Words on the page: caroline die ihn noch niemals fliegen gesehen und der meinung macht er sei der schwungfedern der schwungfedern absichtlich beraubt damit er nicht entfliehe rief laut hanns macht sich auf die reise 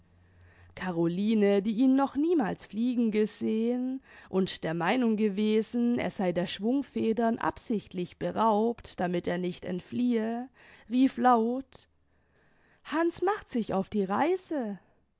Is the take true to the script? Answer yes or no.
no